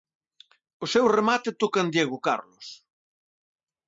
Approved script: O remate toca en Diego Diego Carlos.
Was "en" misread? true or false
false